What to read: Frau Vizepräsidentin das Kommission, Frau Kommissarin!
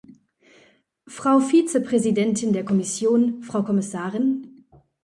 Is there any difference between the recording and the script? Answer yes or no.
yes